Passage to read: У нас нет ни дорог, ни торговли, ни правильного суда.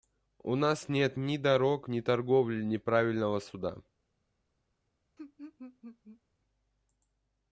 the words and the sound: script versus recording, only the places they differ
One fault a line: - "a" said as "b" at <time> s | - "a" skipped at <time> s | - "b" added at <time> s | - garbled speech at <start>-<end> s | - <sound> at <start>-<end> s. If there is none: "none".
- laugh at 5.2-6.2 s